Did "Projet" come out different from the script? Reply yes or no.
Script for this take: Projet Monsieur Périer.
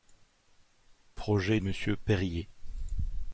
no